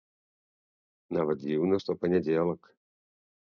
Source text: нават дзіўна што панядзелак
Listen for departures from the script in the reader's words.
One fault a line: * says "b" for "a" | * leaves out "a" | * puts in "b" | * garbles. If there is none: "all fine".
all fine